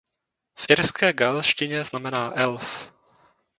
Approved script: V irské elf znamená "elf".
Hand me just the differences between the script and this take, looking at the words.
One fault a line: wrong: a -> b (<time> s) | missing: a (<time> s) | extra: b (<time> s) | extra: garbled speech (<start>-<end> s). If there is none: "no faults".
wrong: elf -> gaelštině (1.1 s)